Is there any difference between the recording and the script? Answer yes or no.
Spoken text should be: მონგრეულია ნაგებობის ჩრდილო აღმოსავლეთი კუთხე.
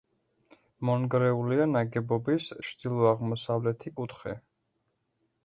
no